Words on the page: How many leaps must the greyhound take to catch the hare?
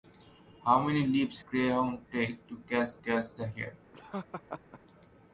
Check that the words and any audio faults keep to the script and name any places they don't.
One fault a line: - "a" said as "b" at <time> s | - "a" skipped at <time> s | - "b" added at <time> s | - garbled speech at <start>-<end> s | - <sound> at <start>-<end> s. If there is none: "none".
- "must the" skipped at 1.4 s
- "catch" added at 3.0 s
- laugh at 3.9-4.8 s